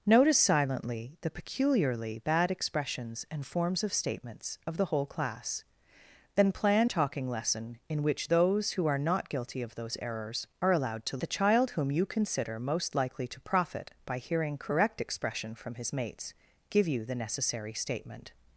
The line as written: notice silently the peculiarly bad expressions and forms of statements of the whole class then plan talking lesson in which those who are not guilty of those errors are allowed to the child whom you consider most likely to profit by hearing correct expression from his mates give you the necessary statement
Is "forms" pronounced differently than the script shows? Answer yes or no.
no